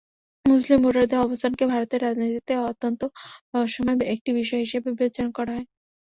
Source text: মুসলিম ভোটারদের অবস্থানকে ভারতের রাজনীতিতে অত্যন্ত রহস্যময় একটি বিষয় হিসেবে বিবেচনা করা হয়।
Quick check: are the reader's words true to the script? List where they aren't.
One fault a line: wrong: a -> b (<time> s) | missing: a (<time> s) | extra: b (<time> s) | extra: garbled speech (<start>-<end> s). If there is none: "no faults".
no faults